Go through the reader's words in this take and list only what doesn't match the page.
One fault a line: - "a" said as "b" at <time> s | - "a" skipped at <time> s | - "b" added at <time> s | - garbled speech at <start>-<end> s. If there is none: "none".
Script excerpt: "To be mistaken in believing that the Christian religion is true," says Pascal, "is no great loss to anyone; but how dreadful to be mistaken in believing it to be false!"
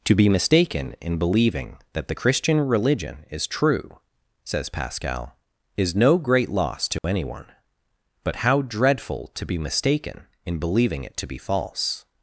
none